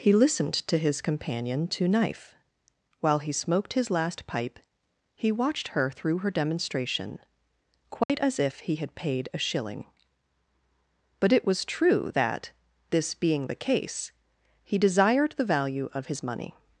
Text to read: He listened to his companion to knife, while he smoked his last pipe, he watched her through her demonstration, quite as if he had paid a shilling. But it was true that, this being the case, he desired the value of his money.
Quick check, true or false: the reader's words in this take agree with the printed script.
true